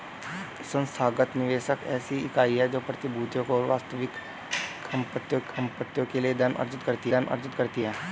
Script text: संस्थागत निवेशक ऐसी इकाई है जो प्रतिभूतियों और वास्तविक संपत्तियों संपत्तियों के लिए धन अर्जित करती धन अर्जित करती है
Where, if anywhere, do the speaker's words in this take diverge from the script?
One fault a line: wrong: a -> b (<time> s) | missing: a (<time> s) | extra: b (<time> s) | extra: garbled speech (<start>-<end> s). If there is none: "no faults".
no faults